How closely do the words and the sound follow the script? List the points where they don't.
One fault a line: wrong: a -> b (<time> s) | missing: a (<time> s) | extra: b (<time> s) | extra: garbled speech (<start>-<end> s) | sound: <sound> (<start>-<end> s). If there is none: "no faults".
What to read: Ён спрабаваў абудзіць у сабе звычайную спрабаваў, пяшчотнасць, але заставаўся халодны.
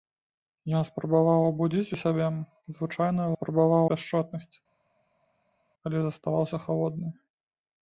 no faults